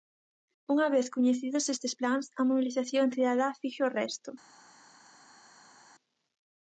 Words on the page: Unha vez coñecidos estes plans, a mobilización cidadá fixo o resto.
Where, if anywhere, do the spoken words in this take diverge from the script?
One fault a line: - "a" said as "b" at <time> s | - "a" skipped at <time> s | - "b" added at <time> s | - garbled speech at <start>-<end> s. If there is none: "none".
none